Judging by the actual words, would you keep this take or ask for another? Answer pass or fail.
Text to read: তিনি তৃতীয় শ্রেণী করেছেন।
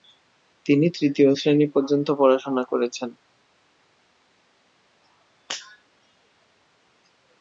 fail